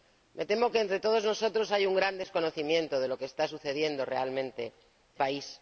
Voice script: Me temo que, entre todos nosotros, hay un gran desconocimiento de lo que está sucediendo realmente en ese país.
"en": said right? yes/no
no